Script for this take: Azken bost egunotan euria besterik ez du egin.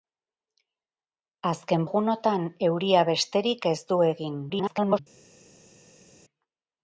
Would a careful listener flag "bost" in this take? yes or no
yes